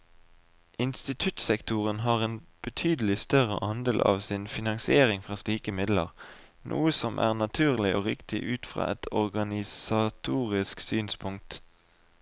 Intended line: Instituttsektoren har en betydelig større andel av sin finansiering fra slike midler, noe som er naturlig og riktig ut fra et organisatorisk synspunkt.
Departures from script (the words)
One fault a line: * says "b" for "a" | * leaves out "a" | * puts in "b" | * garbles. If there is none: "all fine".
all fine